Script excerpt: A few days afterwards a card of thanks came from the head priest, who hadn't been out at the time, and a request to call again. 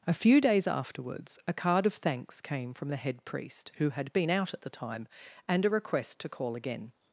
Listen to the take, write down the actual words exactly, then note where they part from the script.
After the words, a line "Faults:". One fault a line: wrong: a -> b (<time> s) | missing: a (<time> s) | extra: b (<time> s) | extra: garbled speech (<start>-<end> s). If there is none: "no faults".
A few days afterwards a card of thanks came from the head priest, who had been out at the time, and a request to call again.
Faults:
wrong: hadn't -> had (3.9 s)